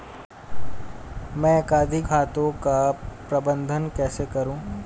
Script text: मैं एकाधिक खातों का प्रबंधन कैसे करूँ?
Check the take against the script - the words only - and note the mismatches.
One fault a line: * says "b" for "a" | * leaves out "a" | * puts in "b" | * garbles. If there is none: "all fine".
all fine